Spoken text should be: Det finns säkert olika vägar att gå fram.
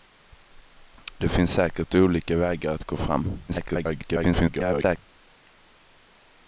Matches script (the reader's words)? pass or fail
fail